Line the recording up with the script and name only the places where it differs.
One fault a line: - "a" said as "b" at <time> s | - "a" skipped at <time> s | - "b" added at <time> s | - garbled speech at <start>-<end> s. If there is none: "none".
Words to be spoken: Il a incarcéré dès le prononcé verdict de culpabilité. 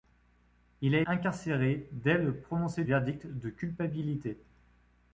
none